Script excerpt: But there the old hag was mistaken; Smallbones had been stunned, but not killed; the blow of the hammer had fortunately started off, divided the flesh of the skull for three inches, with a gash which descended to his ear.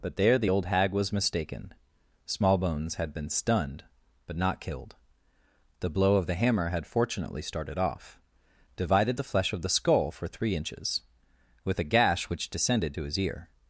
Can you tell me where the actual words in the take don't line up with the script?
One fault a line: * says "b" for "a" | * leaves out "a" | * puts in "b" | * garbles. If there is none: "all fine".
all fine